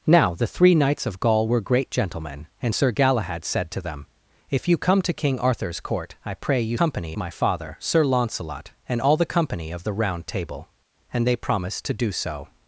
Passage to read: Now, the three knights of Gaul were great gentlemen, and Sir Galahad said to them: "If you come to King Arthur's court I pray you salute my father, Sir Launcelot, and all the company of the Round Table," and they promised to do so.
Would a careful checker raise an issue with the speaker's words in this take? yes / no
yes